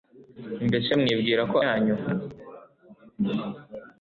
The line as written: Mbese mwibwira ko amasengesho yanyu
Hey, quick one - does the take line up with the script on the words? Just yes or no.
no